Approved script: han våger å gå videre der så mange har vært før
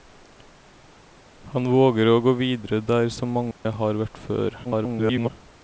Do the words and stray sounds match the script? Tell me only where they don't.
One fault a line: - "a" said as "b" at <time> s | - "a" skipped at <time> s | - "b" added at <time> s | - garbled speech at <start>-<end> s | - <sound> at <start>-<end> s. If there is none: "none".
- dropout at 3.5-3.7 s
- garbled speech at 4.6-5.3 s